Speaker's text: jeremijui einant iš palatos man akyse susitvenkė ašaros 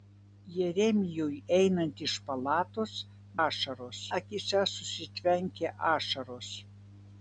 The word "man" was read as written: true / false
false